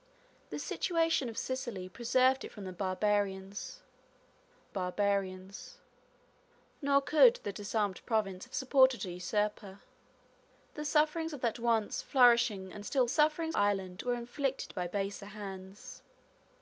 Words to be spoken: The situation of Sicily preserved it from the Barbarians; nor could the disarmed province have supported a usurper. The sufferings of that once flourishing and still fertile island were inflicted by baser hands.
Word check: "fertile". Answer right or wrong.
wrong